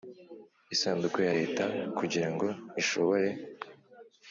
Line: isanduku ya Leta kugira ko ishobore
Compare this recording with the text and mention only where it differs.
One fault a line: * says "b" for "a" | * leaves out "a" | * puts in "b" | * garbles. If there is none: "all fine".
* says "ngo" for "ko"